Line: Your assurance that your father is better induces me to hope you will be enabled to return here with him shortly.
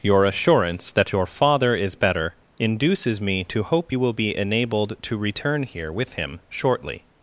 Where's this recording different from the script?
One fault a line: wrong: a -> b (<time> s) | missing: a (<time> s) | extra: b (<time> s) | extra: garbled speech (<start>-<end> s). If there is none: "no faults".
no faults